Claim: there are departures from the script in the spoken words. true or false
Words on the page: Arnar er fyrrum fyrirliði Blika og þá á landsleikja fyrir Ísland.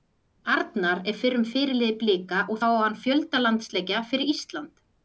true